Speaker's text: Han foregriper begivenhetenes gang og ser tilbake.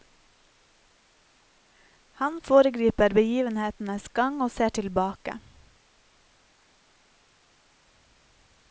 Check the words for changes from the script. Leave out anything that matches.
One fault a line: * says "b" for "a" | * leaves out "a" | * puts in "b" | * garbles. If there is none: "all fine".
all fine